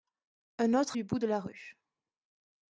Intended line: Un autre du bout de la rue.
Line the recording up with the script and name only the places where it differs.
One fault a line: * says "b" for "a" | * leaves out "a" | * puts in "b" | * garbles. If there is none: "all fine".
all fine